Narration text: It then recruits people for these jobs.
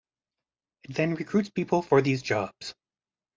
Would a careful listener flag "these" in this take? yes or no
no